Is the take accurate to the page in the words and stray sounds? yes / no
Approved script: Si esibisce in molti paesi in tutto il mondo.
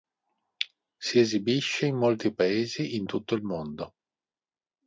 yes